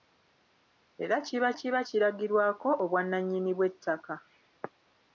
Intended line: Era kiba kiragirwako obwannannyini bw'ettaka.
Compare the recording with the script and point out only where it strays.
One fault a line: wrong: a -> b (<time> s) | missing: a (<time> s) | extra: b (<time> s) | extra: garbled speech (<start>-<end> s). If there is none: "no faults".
extra: kiba (1.6 s)